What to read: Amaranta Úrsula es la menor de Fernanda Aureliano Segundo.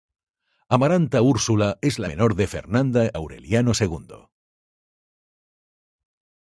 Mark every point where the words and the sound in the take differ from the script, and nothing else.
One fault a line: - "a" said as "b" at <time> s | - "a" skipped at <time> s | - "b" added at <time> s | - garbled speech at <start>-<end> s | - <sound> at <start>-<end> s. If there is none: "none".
none